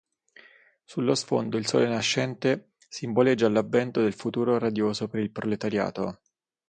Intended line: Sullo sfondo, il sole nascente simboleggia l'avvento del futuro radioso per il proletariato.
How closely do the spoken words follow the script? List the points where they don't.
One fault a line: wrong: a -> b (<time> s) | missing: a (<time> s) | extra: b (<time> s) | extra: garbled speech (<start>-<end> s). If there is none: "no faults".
no faults